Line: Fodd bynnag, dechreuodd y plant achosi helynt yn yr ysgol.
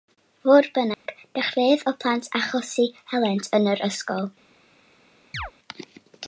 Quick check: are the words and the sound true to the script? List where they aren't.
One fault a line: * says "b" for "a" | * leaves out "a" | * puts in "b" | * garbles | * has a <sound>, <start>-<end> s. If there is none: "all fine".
* has a dropout, 0.9-1.1 s
* has a chirp, 5.3-5.5 s